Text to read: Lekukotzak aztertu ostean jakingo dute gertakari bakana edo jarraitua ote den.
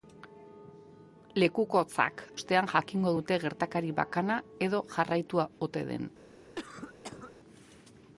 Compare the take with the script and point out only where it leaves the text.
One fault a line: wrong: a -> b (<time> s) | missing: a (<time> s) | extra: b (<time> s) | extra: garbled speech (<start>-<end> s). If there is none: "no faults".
missing: aztertu (2.2 s)